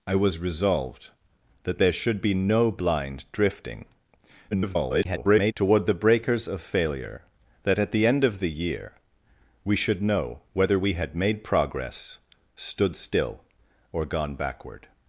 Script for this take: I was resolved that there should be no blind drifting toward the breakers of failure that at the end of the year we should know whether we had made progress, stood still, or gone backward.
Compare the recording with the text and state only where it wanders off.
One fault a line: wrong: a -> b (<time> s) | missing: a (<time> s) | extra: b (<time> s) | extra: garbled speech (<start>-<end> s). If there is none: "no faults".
extra: garbled speech (4.5-5.5 s)